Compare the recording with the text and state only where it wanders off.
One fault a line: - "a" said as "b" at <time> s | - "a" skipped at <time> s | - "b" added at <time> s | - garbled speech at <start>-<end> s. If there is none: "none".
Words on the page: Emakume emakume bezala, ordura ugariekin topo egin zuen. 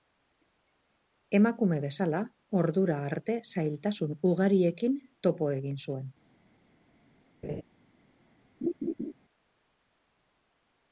- "emakume" skipped at 1.8 s
- "arte zailtasun" added at 3.1 s